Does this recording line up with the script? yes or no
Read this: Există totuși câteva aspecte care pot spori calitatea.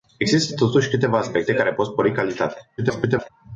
no